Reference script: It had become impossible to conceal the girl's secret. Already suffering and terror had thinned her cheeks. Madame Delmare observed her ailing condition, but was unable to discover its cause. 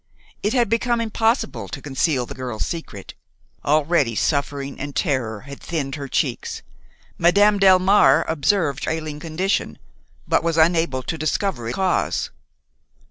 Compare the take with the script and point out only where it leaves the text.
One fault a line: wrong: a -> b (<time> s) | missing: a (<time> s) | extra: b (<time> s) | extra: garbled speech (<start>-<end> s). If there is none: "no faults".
missing: her (8.8 s)
missing: its (11.7 s)